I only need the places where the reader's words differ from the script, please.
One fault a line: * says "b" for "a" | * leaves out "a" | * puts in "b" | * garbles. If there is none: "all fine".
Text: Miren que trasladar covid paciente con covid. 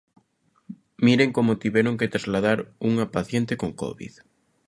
* puts in "como tiveron"
* says "unha" for "covid"